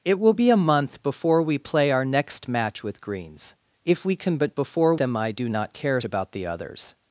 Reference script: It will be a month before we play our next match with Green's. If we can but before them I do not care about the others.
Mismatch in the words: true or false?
false